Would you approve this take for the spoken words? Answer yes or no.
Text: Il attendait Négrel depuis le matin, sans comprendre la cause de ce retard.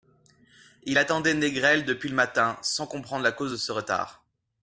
yes